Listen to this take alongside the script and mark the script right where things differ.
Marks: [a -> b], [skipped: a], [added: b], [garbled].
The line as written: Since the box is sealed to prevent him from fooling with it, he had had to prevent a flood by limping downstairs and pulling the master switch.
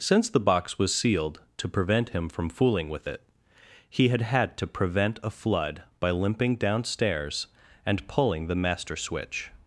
Since the box [is -> was] sealed to prevent him from fooling with it, he had had to prevent a flood by limping downstairs and pulling the master switch.